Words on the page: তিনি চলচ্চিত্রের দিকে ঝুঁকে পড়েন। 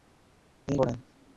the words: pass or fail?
fail